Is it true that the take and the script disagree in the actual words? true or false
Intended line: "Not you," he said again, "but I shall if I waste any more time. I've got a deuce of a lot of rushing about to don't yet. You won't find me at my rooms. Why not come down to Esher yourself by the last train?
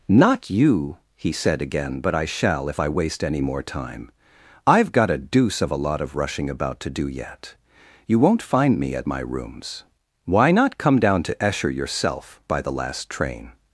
true